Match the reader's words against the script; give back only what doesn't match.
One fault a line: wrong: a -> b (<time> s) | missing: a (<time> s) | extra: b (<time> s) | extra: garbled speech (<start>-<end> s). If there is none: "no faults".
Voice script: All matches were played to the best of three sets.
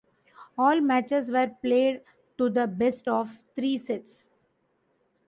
no faults